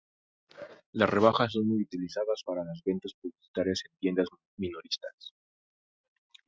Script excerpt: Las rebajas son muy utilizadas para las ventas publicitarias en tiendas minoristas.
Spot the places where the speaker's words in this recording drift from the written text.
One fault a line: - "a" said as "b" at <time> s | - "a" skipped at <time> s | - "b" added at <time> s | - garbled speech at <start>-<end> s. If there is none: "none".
none